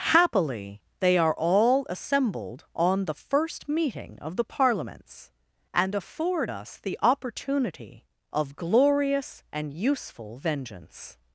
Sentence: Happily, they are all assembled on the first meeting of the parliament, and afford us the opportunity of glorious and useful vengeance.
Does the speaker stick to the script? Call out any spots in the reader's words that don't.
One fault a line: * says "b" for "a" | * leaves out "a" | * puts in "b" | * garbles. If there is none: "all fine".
* says "parliaments" for "parliament"